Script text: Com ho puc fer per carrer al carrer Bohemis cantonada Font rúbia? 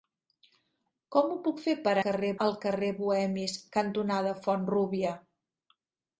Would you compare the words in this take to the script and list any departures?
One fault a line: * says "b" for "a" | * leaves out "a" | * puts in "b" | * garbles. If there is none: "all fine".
all fine